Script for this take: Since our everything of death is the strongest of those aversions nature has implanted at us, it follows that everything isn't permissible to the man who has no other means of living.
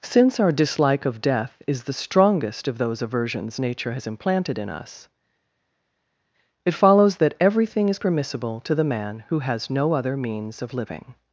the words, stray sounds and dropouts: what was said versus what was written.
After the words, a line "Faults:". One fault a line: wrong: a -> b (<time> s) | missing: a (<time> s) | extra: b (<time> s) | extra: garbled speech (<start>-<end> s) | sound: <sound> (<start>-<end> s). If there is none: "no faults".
Since our dislike of death is the strongest of those aversions nature has implanted in us, it follows that everything is permissible to the man who has no other means of living.
Faults:
wrong: everything -> dislike (0.5 s)
wrong: at -> in (4.6 s)
wrong: isn't -> is (7.9 s)